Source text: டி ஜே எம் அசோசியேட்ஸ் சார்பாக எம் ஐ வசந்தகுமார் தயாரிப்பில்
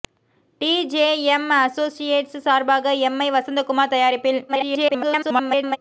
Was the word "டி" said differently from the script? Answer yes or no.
no